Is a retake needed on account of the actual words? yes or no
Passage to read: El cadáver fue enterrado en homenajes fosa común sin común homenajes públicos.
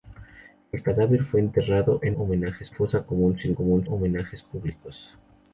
no